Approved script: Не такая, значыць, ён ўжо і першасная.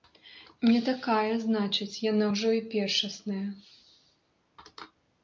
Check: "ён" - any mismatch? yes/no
yes